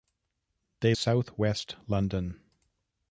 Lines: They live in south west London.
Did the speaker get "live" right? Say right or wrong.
wrong